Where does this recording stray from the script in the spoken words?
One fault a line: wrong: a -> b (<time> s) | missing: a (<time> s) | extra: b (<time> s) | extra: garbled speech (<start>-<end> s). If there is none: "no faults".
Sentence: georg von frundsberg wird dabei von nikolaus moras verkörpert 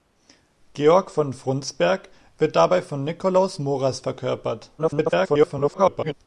extra: garbled speech (4.8-6.1 s)